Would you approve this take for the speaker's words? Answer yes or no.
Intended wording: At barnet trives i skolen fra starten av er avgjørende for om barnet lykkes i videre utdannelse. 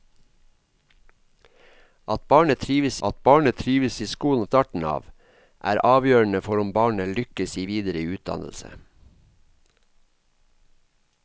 no